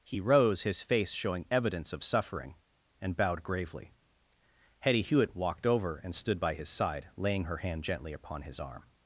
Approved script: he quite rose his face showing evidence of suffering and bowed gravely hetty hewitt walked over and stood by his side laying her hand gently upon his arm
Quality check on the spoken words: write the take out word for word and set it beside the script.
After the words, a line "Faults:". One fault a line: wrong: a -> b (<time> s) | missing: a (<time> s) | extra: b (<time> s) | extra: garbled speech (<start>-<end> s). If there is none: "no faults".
he rose his face showing evidence of suffering and bowed gravely hetty hewitt walked over and stood by his side laying her hand gently upon his arm
Faults:
missing: quite (0.2 s)